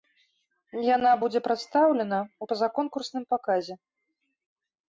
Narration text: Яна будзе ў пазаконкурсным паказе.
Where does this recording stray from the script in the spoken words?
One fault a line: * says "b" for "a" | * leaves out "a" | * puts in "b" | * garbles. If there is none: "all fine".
* puts in "прадстаўлена"